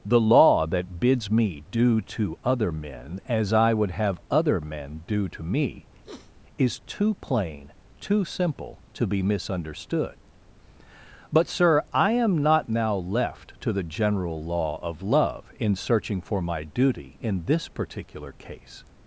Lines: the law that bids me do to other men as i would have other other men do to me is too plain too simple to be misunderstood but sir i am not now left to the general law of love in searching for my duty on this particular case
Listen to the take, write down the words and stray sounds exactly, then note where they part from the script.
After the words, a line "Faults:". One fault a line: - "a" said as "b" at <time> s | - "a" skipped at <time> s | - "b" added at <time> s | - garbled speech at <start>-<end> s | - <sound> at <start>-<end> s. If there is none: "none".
the law that bids me do to other men as i would have other men do to me is too plain too simple to be misunderstood but sir i am not now left to the general law of love in searching for my duty in this particular case
Faults:
- "other" skipped at 4.6 s
- sniff at 6.0-6.4 s
- "on" said as "in" at 17.2 s